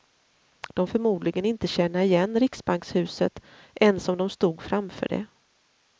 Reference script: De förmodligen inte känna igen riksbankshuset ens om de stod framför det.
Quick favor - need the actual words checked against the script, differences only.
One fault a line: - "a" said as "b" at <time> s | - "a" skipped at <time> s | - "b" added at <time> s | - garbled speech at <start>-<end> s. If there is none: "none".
none